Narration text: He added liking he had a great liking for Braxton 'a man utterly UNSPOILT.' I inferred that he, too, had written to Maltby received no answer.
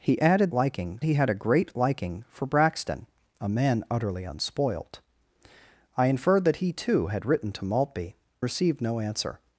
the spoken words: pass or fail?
pass